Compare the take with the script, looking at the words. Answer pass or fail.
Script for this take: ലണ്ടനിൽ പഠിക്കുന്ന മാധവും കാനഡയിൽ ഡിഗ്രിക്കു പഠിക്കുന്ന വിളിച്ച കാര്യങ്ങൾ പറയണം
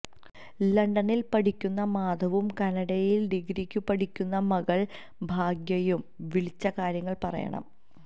fail